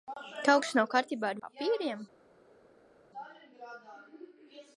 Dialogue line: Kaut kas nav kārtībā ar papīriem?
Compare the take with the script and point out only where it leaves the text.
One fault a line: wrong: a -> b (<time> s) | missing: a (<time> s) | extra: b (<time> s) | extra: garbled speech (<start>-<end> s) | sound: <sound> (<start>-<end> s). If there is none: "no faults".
no faults